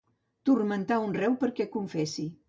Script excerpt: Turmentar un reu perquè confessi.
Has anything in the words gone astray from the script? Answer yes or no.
no